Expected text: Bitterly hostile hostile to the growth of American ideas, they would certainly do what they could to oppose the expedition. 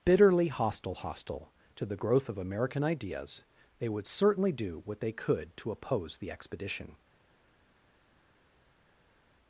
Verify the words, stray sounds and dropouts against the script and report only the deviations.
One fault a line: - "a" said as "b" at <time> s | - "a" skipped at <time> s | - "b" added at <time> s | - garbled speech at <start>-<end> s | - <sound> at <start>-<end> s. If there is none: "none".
none